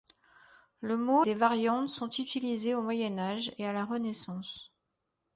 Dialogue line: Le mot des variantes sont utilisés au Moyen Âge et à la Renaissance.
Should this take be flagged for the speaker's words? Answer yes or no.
no